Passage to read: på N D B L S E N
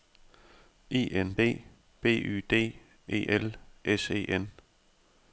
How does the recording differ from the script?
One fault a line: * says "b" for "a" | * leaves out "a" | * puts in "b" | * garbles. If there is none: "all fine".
* says "I" for "på"
* puts in "Y D E"